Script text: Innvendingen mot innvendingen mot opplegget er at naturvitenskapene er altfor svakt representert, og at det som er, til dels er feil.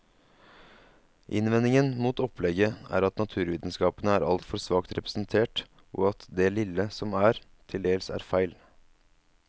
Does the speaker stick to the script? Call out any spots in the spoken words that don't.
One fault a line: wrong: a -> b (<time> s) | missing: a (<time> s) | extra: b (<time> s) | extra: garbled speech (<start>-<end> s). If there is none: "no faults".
missing: innvendingen mot (2.2 s)
extra: lille (6.5 s)